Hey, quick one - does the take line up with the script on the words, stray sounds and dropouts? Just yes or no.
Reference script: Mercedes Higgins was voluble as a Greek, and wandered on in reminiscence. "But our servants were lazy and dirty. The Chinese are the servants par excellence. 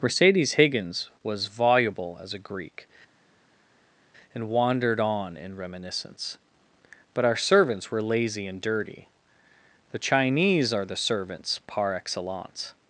yes